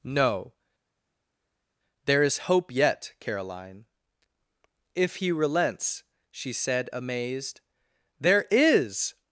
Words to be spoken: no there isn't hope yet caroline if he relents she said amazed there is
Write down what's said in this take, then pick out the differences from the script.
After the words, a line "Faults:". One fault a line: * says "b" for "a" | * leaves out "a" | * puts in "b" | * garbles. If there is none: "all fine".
no there is hope yet caroline if he relents she said amazed there is
Faults:
* says "is" for "isn't"